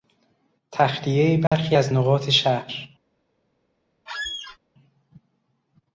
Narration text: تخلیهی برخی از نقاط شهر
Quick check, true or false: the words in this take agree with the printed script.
true